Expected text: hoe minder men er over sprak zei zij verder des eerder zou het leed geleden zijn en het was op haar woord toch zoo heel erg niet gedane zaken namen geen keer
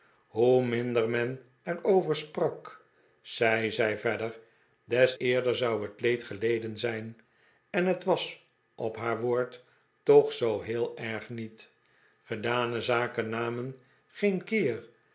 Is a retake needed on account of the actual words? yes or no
no